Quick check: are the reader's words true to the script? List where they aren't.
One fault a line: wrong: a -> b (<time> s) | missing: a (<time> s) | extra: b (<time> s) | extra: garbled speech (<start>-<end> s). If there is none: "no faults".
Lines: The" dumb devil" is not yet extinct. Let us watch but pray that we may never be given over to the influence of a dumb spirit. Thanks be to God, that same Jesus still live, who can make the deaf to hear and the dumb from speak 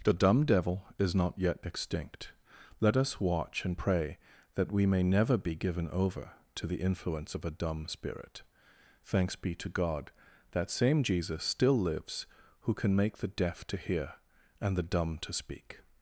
wrong: but -> and (3.6 s)
wrong: live -> lives (11.8 s)
wrong: from -> to (15.2 s)